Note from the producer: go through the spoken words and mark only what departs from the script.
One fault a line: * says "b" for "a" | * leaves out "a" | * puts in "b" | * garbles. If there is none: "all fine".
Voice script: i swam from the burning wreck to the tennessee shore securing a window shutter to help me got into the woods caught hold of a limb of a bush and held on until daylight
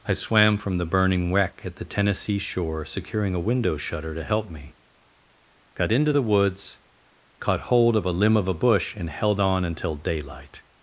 * says "at" for "to"